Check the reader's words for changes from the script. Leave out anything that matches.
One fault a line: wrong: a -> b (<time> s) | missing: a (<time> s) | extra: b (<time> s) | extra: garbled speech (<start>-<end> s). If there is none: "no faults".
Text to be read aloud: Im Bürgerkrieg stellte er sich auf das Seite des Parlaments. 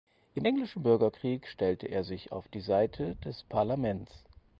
extra: Englischen (0.4 s)
wrong: das -> die (2.5 s)